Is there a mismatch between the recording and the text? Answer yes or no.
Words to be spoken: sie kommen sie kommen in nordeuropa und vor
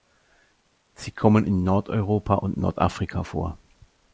yes